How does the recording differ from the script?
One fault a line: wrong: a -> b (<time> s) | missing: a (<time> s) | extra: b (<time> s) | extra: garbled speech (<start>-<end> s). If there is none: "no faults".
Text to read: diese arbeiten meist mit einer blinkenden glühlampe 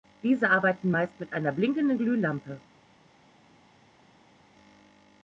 no faults